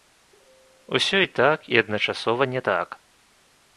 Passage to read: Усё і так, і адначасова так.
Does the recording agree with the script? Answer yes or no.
no